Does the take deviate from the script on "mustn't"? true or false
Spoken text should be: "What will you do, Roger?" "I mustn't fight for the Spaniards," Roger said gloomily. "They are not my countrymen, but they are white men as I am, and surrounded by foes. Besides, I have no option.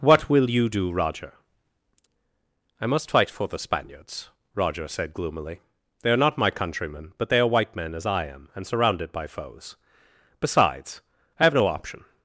true